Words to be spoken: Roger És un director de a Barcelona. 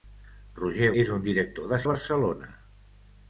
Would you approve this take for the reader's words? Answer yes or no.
yes